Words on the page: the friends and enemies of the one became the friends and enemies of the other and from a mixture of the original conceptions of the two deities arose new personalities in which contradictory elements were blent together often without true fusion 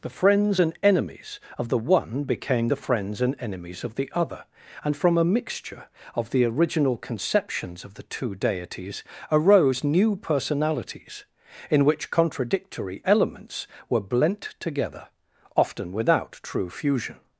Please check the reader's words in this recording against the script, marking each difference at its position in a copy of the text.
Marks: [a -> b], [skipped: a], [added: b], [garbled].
the friends and enemies of the one became the friends and enemies of the other and from a mixture of the original conceptions of the two deities arose new personalities in which contradictory elements were blent together often without true fusion